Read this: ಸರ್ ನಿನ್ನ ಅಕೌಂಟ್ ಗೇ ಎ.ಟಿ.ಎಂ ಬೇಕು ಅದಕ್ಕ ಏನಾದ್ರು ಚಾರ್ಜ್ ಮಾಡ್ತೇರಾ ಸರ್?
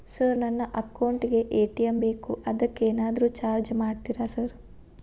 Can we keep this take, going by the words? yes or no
no